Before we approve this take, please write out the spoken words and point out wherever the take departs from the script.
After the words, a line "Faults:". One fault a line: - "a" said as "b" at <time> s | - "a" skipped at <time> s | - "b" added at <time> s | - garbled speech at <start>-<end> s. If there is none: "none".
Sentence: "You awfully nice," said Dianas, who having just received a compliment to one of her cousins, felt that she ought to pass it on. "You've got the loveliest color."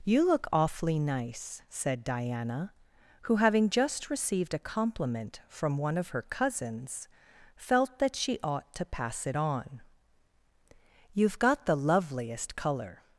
"You look awfully nice," said Diana, who having just received a compliment from one of her cousins, felt that she ought to pass it on. "You've got the loveliest color."
Faults:
- "look" added at 0.2 s
- "Dianas" said as "Diana" at 2.0 s
- "to" said as "from" at 5.5 s